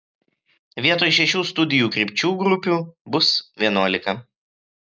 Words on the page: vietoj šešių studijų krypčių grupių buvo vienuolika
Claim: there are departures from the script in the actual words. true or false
true